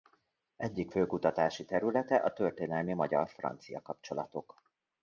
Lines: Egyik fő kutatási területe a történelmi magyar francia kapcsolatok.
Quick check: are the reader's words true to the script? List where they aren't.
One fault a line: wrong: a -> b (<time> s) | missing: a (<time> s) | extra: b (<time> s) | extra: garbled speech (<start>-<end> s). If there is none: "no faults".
no faults